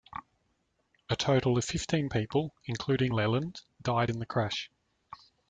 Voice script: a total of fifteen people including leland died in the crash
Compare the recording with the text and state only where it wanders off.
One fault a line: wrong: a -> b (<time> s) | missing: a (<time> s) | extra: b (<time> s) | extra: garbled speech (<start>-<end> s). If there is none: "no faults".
no faults